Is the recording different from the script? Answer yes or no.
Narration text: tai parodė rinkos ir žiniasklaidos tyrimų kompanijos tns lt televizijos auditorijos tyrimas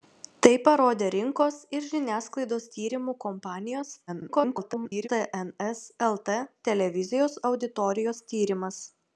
yes